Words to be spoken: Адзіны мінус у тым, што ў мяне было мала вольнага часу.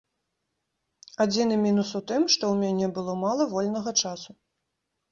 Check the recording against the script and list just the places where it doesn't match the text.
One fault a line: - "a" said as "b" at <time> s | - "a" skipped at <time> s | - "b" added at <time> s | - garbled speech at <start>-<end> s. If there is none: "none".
none